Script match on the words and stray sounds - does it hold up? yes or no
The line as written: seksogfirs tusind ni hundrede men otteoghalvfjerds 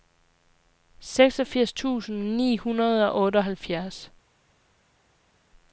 no